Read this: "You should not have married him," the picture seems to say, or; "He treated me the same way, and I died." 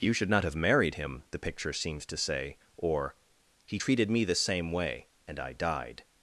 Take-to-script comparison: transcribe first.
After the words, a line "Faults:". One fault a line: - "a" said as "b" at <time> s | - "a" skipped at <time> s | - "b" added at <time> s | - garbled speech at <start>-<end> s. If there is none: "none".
"You should not have married him," the picture seems to say, or; "He treated me the same way, and I died."
Faults:
none